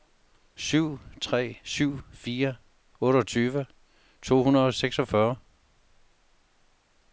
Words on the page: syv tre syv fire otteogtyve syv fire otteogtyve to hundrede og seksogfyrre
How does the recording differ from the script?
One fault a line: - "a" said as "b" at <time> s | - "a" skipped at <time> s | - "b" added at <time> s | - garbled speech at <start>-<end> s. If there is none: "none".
- "syv fire otteogtyve" skipped at 3.6 s